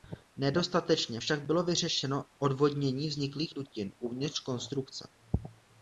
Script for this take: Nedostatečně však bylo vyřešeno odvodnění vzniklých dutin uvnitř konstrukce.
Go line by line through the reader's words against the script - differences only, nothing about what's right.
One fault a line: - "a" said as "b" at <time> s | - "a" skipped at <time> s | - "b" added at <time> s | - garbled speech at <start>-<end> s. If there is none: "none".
none